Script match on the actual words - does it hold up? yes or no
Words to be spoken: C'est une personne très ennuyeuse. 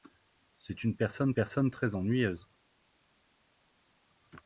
no